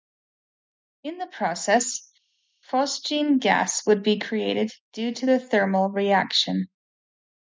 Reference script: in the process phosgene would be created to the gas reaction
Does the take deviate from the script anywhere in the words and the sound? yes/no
yes